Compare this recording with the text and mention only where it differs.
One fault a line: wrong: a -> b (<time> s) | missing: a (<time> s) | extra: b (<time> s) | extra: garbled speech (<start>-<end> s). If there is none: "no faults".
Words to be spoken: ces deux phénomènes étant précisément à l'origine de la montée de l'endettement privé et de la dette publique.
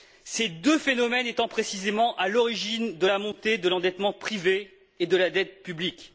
no faults